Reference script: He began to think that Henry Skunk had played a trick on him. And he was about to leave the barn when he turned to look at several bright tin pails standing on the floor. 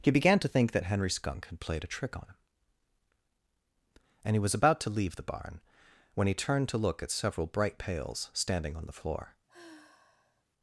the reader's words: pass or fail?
fail